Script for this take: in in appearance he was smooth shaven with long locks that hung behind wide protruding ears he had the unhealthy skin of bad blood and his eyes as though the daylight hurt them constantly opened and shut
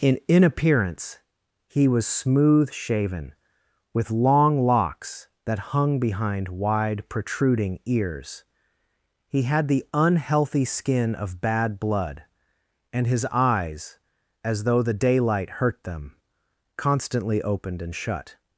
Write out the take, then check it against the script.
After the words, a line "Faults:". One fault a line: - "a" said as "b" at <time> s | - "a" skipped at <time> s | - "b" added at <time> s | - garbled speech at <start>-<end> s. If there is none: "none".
in in appearance he was smooth shaven with long locks that hung behind wide protruding ears he had the unhealthy skin of bad blood and his eyes as though the daylight hurt them constantly opened and shut
Faults:
none